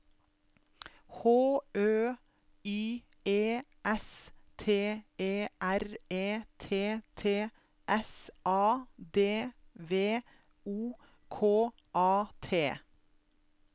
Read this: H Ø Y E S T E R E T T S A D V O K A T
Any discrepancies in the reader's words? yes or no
no